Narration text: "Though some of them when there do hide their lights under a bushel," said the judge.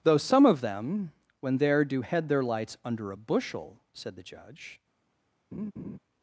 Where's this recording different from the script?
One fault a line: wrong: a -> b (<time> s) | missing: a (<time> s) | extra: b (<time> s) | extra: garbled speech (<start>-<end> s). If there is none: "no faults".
wrong: hide -> head (2.0 s)